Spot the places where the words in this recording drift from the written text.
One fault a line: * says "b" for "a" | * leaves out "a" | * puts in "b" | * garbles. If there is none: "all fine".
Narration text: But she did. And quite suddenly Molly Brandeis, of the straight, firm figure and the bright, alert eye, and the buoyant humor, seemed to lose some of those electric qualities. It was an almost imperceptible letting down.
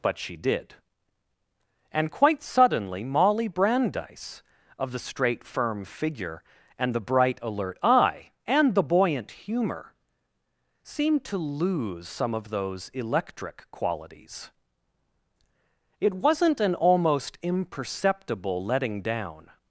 * says "wasn't" for "was"